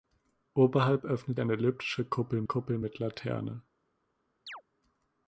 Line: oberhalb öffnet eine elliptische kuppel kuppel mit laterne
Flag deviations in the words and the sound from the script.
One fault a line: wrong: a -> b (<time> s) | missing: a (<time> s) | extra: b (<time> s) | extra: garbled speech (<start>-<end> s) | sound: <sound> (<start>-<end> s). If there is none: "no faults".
sound: chirp (4.5-4.6 s)